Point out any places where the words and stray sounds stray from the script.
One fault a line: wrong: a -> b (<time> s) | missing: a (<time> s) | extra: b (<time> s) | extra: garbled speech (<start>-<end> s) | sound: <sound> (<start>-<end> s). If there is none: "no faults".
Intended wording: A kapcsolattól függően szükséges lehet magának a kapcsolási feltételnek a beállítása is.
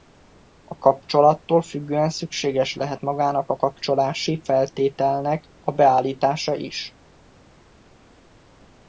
no faults